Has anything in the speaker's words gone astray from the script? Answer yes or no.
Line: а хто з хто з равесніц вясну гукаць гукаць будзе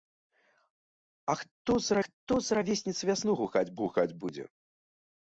no